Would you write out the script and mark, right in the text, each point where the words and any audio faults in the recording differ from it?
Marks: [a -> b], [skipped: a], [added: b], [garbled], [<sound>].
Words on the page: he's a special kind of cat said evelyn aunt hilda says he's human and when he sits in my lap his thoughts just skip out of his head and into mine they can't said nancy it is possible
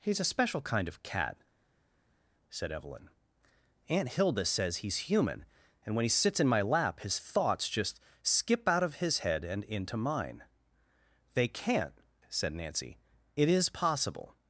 he's a special kind of cat said evelyn aunt hilda says he's human and when he sits in my lap his thoughts just skip out of his head and into mine they can't said nancy it is possible